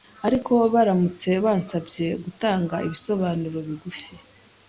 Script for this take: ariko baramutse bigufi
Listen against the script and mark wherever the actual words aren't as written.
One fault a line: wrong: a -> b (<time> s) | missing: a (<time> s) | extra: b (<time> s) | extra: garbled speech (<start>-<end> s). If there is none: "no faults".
extra: bansabye gutanga ibisobanuro (1.4 s)